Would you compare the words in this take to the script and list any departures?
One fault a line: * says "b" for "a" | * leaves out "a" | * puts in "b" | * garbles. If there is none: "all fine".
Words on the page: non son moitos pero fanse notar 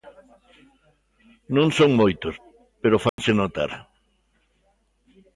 all fine